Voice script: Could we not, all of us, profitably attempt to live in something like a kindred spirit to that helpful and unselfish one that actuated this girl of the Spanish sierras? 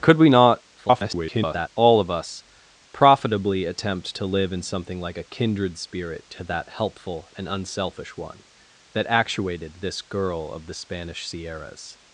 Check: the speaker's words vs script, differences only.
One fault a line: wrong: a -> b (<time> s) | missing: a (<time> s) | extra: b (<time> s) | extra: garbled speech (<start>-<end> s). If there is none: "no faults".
extra: garbled speech (0.8-1.7 s)